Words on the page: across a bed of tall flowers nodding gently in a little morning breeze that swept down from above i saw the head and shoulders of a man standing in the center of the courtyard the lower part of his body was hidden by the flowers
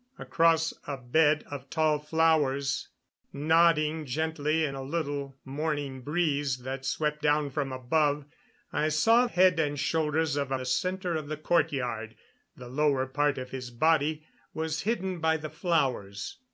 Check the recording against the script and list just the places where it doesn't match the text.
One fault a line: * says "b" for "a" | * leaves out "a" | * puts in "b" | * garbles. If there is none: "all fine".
* leaves out "the"
* leaves out "man standing in"